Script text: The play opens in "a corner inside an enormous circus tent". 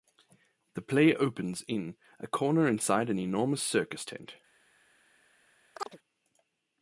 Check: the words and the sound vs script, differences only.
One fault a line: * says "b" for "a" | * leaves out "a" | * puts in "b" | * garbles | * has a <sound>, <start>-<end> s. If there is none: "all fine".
* has a chirp, 5.7-6.0 s